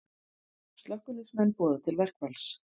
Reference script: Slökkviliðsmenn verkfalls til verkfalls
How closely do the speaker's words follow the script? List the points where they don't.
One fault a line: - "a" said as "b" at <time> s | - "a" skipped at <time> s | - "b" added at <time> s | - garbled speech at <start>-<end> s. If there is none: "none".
- "verkfalls" said as "boða" at 1.6 s